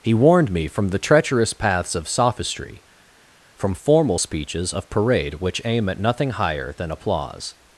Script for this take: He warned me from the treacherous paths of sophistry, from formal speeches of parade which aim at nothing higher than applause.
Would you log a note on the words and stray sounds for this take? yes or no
no